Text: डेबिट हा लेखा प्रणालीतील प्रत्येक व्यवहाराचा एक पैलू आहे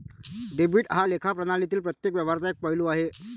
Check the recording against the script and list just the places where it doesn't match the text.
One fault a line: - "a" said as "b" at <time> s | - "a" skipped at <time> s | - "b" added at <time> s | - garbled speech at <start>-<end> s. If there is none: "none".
none